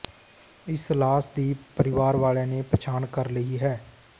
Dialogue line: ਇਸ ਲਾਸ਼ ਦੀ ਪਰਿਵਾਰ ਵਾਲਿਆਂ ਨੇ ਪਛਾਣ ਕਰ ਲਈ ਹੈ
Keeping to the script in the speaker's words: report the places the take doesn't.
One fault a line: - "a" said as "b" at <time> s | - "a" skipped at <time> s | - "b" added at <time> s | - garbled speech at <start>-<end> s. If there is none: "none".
none